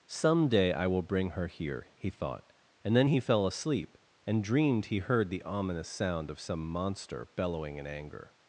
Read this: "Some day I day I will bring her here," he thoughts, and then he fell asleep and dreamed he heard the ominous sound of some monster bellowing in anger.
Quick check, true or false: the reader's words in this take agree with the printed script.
false